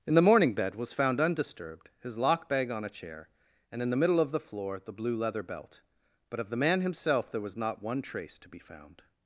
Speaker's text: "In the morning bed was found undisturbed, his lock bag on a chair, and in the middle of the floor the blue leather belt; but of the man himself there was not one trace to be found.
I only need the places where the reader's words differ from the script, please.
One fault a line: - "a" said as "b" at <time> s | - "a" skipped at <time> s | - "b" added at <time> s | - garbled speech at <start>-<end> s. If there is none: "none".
none